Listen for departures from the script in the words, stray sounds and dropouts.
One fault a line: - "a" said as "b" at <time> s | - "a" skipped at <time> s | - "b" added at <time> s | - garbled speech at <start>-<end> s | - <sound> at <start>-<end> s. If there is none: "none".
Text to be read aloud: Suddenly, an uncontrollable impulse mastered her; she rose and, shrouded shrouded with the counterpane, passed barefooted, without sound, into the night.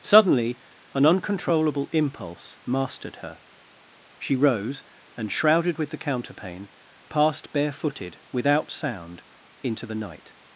- "shrouded" skipped at 5.8 s